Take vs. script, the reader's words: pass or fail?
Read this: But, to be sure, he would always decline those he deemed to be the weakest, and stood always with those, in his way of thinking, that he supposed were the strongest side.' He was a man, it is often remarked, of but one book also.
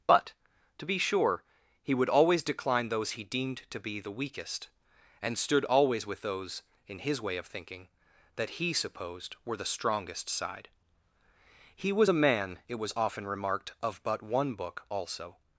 fail